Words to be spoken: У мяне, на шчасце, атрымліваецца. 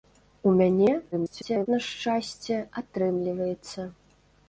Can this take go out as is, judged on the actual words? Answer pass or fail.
fail